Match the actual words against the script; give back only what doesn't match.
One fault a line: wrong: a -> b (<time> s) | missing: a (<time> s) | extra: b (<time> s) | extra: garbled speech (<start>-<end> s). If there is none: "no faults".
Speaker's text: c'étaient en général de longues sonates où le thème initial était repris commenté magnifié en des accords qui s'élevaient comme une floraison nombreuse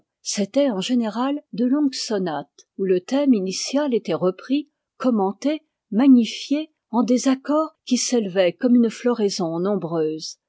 no faults